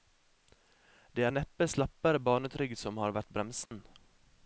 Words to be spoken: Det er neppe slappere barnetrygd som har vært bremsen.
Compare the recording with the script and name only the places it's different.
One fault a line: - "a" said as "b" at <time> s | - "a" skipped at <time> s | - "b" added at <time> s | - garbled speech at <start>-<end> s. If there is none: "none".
none